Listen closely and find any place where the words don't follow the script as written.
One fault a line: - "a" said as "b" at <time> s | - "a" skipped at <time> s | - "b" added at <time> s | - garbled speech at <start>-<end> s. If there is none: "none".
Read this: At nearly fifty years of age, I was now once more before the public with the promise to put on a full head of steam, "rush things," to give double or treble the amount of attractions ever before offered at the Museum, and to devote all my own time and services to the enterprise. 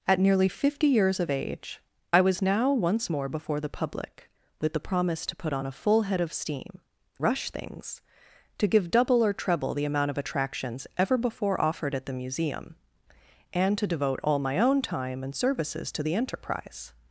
none